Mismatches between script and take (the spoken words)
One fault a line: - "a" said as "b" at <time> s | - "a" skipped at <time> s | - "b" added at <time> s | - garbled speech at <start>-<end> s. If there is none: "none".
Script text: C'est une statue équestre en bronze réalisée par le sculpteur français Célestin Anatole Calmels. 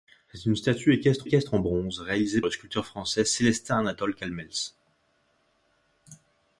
- "équestre" added at 1.2 s
- "par" skipped at 2.4 s